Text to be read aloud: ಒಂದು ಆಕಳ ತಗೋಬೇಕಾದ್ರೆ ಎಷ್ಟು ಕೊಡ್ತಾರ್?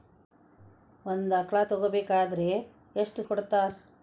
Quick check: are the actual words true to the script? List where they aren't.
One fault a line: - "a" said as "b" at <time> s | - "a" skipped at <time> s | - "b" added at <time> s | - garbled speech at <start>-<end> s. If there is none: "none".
none